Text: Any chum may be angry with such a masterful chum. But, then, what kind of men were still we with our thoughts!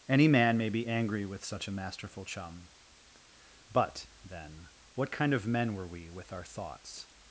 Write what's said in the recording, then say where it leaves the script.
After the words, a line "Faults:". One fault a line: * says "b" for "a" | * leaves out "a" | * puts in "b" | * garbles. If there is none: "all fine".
Any man may be angry with such a masterful chum. But, then, what kind of men were we with our thoughts!
Faults:
* says "man" for "chum"
* leaves out "still"